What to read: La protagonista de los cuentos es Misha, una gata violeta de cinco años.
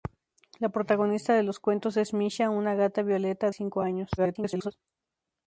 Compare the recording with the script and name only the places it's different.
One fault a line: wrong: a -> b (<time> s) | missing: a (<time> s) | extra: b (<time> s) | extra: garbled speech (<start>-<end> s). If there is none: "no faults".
missing: de (3.5 s)
extra: garbled speech (4.2-4.7 s)